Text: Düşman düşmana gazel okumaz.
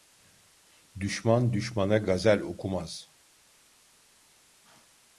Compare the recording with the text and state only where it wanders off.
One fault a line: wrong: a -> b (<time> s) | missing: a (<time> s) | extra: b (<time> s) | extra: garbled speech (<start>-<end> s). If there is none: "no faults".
no faults